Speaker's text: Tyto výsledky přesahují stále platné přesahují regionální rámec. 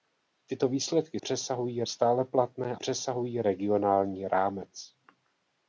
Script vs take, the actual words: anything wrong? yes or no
no